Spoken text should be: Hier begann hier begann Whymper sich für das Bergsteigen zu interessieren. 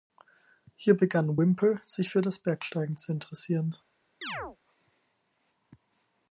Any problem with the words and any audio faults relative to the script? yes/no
yes